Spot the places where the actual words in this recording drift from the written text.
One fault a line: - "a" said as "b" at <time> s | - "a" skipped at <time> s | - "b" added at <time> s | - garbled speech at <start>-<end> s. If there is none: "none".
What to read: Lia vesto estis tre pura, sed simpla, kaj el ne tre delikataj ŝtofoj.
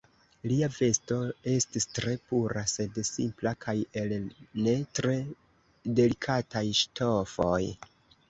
none